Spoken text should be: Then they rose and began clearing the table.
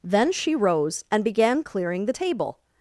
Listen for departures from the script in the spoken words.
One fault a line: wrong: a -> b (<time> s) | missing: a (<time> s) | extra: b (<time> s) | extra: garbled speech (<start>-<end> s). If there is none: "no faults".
wrong: they -> she (0.3 s)